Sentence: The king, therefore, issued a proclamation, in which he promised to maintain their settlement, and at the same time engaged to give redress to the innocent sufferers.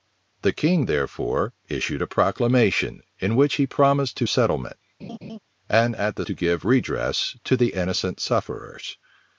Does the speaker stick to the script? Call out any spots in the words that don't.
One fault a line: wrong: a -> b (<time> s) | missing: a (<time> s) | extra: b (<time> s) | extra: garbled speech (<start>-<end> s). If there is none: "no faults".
missing: maintain their (4.3 s)
missing: same time engaged (6.3 s)